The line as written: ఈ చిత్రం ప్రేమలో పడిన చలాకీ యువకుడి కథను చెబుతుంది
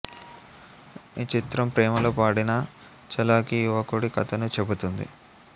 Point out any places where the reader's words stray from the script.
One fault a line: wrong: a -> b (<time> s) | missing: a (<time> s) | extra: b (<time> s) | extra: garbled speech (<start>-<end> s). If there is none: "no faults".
no faults